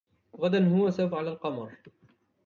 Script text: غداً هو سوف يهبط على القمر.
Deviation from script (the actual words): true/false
true